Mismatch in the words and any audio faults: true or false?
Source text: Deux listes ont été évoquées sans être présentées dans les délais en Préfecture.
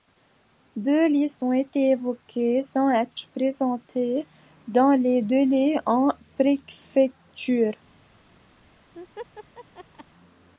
true